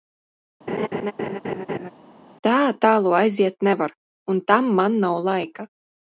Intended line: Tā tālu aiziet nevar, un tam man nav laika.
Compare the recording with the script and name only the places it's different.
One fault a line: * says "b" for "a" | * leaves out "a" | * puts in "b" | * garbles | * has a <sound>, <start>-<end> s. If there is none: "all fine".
* has a laugh, 0.7-1.9 s